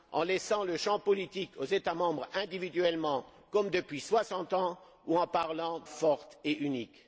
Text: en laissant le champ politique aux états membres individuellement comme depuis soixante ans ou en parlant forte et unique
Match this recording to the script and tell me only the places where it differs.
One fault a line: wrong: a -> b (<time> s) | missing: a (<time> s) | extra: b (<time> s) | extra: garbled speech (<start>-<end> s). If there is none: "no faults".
no faults